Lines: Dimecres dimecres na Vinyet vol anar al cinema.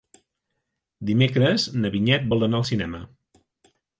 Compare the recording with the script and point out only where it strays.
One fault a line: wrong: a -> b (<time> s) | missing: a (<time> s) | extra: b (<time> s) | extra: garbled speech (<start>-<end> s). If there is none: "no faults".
missing: dimecres (1.7 s)